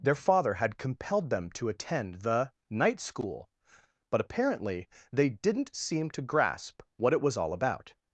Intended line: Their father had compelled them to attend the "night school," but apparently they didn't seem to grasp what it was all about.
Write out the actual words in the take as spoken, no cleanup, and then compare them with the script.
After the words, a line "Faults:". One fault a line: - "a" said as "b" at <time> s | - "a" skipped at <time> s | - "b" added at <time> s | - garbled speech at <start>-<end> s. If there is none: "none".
Their father had compelled them to attend the "night school," but apparently they didn't seem to grasp what it was all about.
Faults:
none